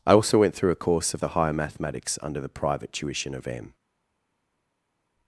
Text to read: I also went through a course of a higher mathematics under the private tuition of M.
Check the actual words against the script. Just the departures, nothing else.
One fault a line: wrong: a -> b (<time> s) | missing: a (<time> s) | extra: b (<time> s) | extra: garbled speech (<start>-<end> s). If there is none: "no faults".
wrong: a -> the (1.2 s)